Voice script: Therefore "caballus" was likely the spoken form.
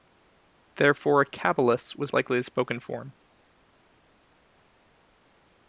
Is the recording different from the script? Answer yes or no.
no